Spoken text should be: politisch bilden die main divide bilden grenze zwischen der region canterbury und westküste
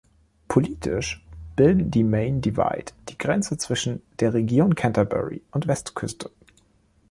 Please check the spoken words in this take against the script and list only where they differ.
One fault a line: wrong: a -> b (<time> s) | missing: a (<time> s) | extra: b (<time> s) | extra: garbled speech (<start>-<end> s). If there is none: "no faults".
wrong: bilden -> die (3.1 s)